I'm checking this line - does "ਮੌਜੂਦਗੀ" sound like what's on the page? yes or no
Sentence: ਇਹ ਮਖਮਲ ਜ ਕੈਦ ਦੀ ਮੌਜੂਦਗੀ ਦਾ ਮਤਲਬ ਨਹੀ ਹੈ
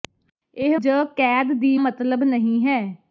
no